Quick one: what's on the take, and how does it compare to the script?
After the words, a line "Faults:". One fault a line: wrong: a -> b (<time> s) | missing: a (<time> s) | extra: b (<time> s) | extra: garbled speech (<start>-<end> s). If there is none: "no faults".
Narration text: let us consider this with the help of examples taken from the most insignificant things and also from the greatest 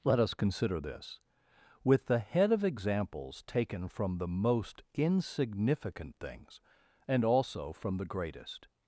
let us consider this with the head of examples taken from the most insignificant things and also from the greatest
Faults:
wrong: help -> head (2.2 s)